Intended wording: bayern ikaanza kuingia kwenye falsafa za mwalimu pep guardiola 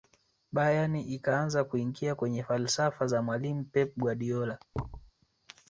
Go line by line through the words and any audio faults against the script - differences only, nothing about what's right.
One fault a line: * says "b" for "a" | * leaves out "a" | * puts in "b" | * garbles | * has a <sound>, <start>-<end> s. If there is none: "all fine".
* has a thud, 4.7-5.1 s